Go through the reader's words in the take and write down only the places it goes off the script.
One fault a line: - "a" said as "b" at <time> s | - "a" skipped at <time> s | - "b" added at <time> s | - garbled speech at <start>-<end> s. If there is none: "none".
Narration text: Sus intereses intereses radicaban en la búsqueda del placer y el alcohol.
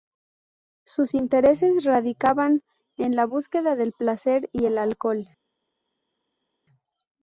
- "intereses" skipped at 1.8 s